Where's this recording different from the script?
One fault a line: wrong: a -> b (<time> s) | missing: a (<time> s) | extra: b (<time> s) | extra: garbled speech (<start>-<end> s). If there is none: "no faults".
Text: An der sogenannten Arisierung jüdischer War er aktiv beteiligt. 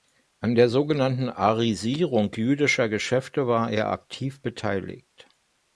extra: Geschäfte (2.9 s)